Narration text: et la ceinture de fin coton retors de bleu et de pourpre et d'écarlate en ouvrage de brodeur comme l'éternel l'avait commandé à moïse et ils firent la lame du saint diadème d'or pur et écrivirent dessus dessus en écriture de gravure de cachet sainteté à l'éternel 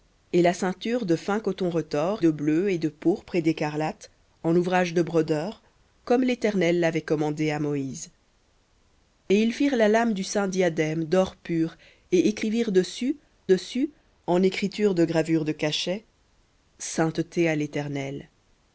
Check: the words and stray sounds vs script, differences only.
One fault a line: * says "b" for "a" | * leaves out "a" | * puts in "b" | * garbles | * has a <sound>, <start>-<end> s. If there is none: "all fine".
all fine